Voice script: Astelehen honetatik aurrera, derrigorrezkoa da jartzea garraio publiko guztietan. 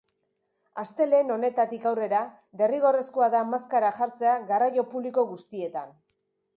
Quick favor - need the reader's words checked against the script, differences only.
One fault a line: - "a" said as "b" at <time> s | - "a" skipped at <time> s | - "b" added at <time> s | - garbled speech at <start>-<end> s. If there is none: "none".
- "maskara" added at 3.5 s